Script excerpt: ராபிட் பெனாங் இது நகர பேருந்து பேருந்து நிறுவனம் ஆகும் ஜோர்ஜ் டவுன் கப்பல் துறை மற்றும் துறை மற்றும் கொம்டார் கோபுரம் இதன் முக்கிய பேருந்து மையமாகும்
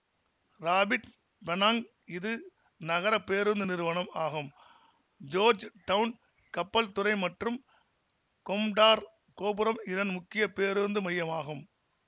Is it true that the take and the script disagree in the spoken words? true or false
true